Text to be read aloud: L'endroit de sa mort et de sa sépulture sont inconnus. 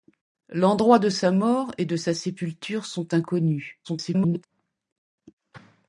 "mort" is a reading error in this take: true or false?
false